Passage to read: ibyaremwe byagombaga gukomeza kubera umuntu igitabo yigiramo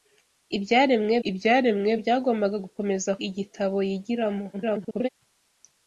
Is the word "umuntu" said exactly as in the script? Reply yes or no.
no